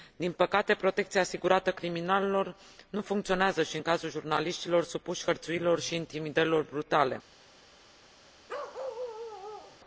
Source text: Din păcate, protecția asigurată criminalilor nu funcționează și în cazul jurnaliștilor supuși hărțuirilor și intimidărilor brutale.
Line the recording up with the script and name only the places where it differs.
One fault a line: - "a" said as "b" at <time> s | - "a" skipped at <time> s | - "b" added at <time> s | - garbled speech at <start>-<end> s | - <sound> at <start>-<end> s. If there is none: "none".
- bark at 8.5-9.8 s